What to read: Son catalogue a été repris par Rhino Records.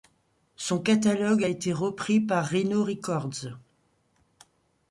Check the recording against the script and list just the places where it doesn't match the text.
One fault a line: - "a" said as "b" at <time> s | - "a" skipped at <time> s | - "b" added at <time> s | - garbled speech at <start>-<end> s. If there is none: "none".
none